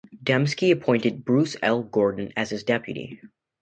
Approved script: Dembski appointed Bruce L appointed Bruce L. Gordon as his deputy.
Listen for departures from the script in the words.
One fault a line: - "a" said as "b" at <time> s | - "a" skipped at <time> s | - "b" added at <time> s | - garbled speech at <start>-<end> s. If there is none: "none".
- "appointed Bruce L" skipped at 1.8 s